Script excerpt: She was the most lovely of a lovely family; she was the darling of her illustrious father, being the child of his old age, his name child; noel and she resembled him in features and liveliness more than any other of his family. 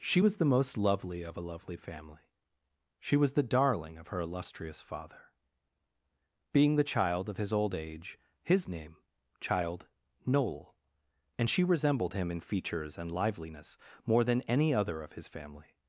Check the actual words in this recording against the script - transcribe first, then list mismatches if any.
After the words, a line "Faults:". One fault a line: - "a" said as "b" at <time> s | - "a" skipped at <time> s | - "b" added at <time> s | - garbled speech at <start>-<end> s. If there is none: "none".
She was the most lovely of a lovely family; she was the darling of her illustrious father, being the child of his old age, his name child; noel and she resembled him in features and liveliness more than any other of his family.
Faults:
none